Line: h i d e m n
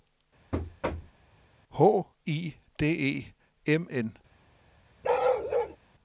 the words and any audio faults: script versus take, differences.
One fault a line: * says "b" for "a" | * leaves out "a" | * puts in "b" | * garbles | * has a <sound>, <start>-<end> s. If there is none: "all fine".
* has a thud, 0.5-1.2 s
* has a bark, 5.0-5.8 s